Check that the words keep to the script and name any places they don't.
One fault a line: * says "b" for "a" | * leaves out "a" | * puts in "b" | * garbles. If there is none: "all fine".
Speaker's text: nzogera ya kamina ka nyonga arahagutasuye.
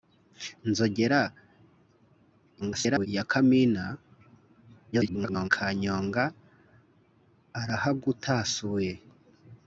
* garbles
* garbles